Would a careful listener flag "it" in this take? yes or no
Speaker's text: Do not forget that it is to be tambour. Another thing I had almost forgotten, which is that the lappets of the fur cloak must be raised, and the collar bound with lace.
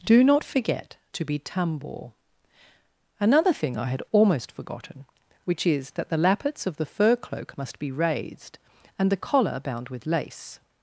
yes